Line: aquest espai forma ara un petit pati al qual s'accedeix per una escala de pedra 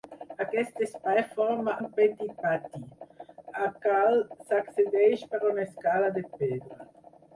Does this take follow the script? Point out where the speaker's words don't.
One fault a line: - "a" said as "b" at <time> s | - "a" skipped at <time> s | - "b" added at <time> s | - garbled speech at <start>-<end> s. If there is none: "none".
- "ara" skipped at 1.8 s